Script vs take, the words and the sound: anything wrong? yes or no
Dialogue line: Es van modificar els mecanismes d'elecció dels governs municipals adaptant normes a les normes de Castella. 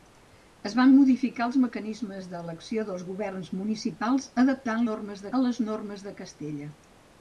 no